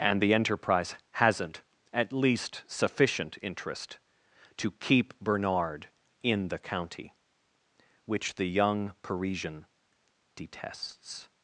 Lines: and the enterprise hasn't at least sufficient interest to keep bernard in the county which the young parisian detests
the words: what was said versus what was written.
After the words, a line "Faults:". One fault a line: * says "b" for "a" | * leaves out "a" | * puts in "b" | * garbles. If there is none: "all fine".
and the enterprise hasn't at least sufficient interest to keep bernard in the county which the young parisian detests
Faults:
all fine